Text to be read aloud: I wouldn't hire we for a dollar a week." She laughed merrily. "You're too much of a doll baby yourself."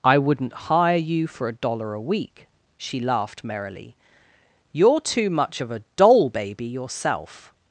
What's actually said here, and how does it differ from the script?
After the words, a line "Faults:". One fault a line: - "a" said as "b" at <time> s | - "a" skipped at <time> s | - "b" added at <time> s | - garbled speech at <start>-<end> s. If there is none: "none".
I wouldn't hire you for a dollar a week." She laughed merrily. "You're too much of a doll baby yourself."
Faults:
- "we" said as "you" at 1.0 s